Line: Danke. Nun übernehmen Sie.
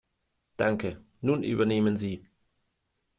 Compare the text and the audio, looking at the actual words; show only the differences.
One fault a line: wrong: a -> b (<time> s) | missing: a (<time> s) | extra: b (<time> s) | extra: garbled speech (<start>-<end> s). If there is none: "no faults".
no faults